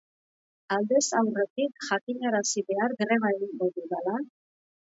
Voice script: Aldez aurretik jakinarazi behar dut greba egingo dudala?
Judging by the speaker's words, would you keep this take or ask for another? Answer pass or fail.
fail